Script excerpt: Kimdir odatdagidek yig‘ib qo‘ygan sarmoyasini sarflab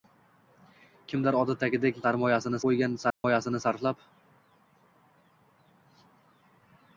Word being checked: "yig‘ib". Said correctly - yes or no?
no